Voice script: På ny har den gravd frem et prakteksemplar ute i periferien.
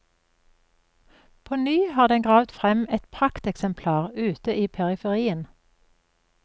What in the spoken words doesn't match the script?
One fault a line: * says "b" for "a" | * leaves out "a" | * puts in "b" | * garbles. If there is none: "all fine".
all fine